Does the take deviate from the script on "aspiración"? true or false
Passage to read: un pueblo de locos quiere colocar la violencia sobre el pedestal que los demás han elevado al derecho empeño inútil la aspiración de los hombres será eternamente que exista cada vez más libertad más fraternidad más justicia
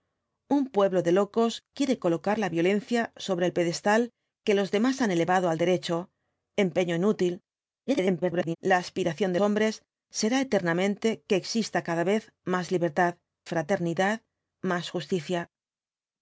false